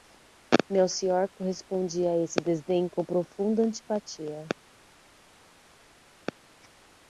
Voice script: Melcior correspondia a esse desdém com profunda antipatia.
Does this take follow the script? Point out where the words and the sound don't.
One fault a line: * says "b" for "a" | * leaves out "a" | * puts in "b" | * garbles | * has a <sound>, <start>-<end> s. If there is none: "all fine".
all fine